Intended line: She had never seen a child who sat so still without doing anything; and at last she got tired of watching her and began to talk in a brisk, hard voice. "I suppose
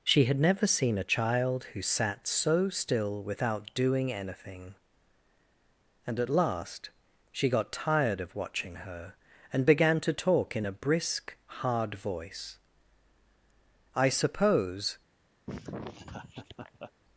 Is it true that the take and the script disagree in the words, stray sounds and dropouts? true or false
true